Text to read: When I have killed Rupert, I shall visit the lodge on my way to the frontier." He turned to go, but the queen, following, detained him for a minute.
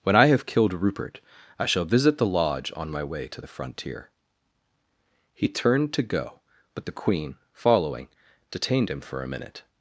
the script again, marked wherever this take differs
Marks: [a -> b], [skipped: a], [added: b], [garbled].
When I have killed Rupert, I shall visit the lodge on my way to the frontier." He turned to go, but the queen, following, detained him for a minute.